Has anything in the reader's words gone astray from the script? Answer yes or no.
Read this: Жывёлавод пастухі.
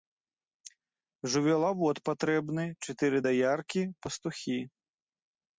yes